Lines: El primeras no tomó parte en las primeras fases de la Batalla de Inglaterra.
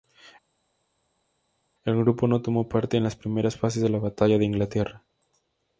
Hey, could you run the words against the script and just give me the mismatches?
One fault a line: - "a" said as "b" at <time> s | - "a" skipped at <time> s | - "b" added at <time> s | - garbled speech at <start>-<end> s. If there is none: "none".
- "primeras" said as "grupo" at 2.0 s